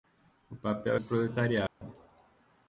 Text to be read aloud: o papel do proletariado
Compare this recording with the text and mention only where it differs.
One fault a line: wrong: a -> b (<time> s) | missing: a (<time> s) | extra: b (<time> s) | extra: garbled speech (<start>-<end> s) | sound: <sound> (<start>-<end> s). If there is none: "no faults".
sound: dropout (1.7-1.8 s)